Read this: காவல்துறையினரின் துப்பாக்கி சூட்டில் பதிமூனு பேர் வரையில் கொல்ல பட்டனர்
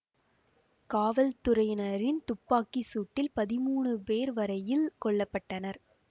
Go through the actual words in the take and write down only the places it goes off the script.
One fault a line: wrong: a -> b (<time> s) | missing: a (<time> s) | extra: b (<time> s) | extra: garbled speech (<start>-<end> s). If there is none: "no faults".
no faults